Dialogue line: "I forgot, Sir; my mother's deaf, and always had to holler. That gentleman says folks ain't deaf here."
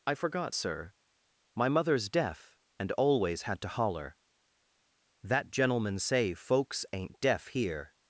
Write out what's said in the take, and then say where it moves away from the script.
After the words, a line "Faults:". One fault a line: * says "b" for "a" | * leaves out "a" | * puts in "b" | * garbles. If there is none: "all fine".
"I forgot, Sir; my mother's deaf, and always had to holler. That gentleman say folks ain't deaf here."
Faults:
* says "say" for "says"